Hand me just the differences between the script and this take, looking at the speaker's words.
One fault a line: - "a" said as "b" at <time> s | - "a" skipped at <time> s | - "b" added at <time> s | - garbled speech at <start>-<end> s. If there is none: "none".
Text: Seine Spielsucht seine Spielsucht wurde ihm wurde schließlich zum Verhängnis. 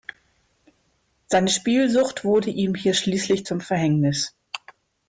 - "seine Spielsucht" skipped at 2.2 s
- "wurde" said as "hier" at 2.7 s